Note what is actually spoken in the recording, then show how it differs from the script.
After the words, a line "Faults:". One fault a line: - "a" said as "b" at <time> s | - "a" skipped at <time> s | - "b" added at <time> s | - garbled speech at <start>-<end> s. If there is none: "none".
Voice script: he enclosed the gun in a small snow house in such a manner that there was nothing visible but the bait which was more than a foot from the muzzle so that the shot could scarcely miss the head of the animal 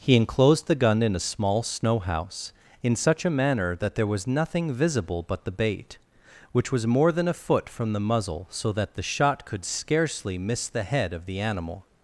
he enclosed the gun in a small snow house in such a manner that there was nothing visible but the bait which was more than a foot from the muzzle so that the shot could scarcely miss the head of the animal
Faults:
none